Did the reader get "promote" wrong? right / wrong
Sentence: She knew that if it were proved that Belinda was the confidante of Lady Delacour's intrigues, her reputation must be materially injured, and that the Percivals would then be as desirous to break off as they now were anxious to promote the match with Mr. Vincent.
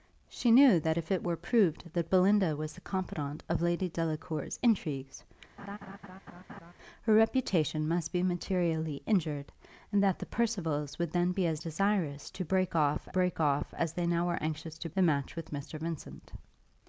wrong